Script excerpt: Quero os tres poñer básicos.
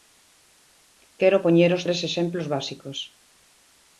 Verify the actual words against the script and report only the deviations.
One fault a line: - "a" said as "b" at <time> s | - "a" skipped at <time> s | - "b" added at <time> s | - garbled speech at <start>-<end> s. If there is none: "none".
- "poñer" added at 1.4 s
- "poñer" said as "exemplos" at 2.1 s